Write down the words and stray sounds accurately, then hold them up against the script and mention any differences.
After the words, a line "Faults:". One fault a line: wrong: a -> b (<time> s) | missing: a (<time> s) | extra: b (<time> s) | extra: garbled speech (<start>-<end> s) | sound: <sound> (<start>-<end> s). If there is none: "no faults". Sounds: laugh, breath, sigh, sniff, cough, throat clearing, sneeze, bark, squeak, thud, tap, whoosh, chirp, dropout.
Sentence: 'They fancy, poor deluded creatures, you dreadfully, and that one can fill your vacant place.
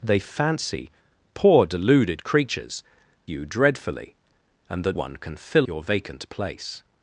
'They fancy, poor deluded creatures, you dreadfully, and that one can fill your vacant place.
Faults:
no faults